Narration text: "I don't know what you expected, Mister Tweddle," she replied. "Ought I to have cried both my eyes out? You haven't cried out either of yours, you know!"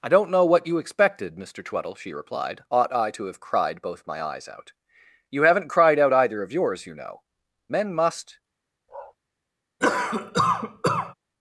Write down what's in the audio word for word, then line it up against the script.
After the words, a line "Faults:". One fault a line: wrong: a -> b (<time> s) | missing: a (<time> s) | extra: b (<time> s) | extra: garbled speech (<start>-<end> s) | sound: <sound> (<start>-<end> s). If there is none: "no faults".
"I don't know what you expected, Mister Tweddle," she replied. "Ought I to have cried both my eyes out? You haven't cried out either of yours, you know!" "'Men must
Faults:
extra: Men must (7.7 s)
sound: bark (8.9-9.2 s)
sound: cough (9.8-11.1 s)